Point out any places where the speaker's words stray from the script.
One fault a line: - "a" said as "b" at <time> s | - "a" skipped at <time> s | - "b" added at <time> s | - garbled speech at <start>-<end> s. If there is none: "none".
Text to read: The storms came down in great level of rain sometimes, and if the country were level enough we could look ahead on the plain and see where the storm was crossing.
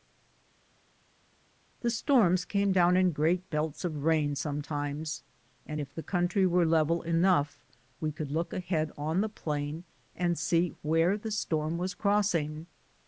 - "level" said as "belts" at 3.5 s